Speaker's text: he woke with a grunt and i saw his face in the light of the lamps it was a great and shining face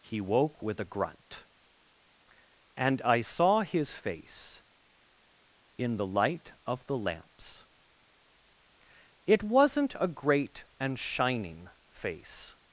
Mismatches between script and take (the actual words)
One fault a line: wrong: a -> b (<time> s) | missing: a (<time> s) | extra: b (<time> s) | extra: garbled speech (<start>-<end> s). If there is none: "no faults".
wrong: was -> wasn't (9.4 s)